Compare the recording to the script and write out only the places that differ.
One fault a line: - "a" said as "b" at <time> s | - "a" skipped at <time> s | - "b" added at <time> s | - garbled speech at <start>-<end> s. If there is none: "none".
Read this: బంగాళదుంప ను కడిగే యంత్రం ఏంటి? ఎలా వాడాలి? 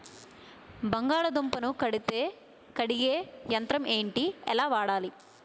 none